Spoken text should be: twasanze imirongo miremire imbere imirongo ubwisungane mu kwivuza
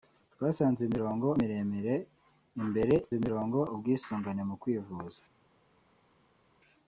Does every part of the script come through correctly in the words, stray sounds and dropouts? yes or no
yes